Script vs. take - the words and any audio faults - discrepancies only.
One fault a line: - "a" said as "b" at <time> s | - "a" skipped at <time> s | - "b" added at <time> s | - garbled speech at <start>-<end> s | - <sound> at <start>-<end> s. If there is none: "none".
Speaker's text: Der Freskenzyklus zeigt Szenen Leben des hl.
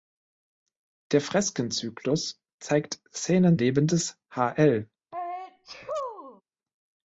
- sneeze at 5.1-6.4 s